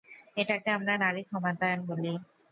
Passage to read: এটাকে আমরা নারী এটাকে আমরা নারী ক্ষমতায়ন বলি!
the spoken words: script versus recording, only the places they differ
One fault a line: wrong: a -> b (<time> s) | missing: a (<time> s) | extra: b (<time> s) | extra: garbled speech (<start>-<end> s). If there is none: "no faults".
missing: এটাকে আমরা নারী (1.2 s)